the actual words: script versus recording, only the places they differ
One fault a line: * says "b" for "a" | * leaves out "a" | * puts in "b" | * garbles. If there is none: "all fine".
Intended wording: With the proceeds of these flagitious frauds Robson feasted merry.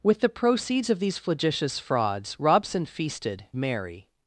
all fine